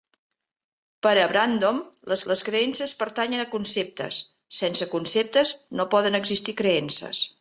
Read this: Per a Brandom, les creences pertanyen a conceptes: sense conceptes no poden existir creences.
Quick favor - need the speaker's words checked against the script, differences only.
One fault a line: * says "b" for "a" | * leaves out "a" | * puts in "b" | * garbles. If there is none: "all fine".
* puts in "les"